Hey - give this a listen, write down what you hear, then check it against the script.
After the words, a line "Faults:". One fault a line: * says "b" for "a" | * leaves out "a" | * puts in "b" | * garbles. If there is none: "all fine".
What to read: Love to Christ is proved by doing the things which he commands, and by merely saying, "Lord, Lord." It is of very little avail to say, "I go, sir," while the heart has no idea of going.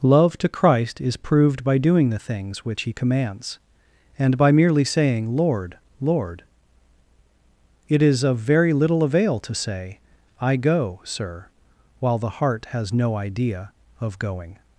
Love to Christ is proved by doing the things which he commands, and by merely saying, "Lord, Lord." It is of very little avail to say, "I go, sir," while the heart has no idea of going.
Faults:
all fine